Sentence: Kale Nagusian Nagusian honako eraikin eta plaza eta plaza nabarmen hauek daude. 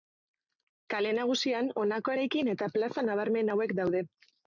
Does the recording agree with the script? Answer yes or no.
no